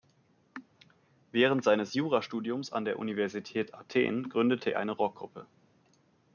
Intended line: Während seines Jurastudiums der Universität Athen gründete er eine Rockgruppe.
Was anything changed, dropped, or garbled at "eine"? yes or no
no